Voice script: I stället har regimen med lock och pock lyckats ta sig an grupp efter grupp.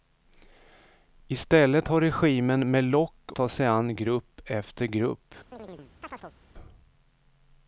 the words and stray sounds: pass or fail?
fail